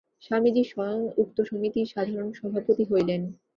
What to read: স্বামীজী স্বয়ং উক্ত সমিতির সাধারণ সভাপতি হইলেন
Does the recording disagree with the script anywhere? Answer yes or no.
no